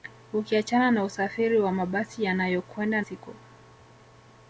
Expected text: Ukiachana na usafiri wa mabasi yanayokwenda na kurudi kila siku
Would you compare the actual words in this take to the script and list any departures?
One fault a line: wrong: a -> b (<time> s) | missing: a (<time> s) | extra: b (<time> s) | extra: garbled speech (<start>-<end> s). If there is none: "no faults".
missing: na kurudi kila (3.0 s)